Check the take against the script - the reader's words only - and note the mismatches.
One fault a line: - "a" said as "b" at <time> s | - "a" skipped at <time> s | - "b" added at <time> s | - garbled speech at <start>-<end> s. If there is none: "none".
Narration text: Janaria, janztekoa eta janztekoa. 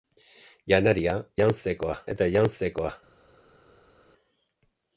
none